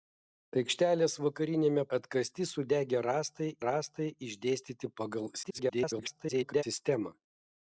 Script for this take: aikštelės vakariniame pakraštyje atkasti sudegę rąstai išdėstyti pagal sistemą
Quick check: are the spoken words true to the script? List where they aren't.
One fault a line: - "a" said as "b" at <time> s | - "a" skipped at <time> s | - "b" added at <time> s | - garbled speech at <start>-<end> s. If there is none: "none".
- "pakraštyje" skipped at 1.8 s
- "rąstai" added at 3.7 s
- garbled speech at 5.4-6.6 s